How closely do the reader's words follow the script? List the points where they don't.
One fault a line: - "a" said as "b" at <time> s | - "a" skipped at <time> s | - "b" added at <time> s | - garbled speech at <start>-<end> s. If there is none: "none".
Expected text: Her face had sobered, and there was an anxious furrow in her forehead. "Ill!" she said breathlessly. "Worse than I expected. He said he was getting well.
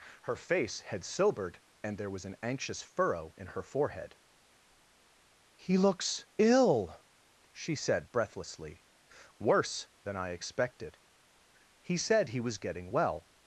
- "He looks" added at 5.6 s